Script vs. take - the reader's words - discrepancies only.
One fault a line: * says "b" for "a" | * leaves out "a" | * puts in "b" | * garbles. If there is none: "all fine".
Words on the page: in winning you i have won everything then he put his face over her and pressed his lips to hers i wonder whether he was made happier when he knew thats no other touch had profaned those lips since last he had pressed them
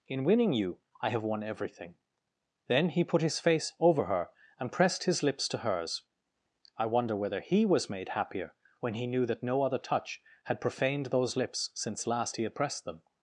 * says "that" for "thats"